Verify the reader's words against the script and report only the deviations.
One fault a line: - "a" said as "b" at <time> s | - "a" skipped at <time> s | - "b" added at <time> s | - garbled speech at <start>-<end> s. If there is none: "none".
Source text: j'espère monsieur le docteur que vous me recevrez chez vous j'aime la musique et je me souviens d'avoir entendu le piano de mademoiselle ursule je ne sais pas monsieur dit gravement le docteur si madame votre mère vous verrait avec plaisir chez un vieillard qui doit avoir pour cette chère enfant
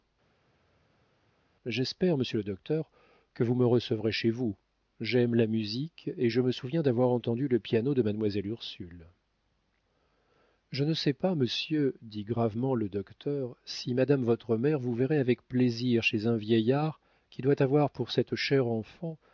none